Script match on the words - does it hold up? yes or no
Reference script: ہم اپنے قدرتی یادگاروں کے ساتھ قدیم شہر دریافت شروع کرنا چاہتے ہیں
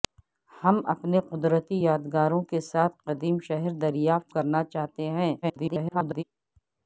no